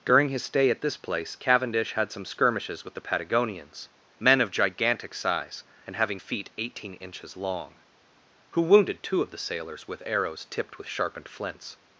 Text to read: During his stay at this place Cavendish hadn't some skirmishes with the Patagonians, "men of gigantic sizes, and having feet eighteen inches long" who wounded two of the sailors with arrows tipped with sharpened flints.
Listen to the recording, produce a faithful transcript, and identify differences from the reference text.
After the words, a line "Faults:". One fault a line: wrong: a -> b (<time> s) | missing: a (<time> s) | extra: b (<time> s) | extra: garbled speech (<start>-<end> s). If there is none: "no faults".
During his stay at this place Cavendish had some skirmishes with the Patagonians, "men of gigantic size, and having feet eighteen inches long" who wounded two of the sailors with arrows tipped with sharpened flints.
Faults:
wrong: hadn't -> had (1.9 s)
wrong: sizes -> size (5.1 s)